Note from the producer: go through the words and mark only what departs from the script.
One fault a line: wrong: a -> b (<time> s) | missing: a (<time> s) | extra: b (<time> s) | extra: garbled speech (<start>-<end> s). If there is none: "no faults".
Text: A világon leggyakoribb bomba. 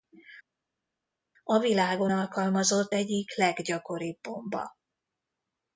extra: alkalmazott egyik (2.1 s)